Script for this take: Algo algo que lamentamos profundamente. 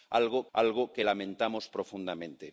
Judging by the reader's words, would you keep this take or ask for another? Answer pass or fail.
pass